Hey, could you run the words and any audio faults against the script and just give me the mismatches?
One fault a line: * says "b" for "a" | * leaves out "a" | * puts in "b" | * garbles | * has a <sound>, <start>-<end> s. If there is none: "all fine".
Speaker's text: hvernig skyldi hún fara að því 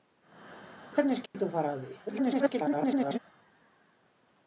* has a dropout, 1.3-1.3 s
* garbles